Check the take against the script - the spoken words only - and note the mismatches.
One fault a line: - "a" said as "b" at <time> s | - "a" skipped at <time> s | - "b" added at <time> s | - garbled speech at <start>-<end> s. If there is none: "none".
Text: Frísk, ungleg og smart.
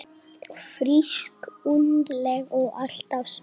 - "alltaf" added at 2.8 s